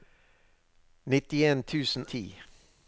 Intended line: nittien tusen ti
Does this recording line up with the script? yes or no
yes